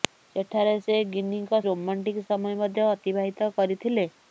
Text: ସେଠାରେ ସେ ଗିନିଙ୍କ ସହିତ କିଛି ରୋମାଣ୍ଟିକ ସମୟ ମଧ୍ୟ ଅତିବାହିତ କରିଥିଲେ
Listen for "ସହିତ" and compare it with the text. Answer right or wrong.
wrong